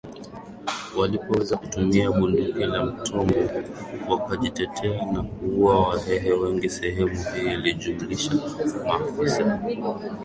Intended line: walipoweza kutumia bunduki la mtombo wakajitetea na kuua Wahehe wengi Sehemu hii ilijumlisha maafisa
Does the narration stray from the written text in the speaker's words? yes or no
no